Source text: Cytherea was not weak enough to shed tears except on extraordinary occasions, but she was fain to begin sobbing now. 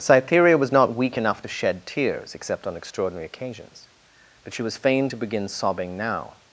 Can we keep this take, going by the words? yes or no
yes